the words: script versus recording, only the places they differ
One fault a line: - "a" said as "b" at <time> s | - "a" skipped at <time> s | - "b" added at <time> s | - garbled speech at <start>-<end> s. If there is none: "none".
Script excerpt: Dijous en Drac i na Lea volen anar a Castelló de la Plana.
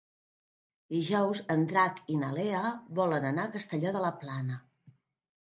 none